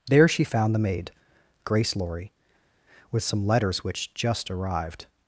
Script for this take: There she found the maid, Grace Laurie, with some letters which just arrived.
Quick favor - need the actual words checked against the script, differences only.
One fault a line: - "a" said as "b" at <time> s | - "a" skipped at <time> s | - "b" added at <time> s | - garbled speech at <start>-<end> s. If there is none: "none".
none